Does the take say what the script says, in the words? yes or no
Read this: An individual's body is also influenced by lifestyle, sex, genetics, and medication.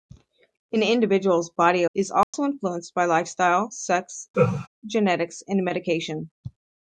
yes